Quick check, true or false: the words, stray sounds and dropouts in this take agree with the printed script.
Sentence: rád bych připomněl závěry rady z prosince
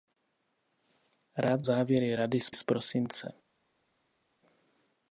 false